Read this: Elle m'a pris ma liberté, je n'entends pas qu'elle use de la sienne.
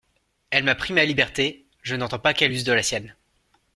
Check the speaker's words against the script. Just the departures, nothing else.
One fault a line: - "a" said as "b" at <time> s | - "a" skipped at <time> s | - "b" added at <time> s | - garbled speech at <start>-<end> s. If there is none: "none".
none